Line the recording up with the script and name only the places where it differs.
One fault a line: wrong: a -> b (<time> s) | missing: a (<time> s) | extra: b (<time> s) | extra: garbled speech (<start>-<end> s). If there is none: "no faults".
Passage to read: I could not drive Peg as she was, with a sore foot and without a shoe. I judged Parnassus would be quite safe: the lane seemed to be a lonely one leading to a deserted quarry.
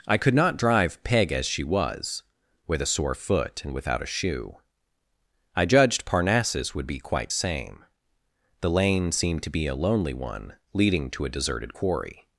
wrong: safe -> same (7.3 s)